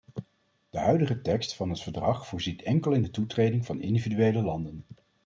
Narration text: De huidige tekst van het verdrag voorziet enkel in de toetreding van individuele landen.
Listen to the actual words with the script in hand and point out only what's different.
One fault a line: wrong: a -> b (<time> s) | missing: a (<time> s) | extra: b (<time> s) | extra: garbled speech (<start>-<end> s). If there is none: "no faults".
no faults